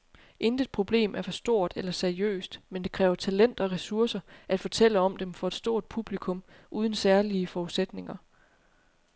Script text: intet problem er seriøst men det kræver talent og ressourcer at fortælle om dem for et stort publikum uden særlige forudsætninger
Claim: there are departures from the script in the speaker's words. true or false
true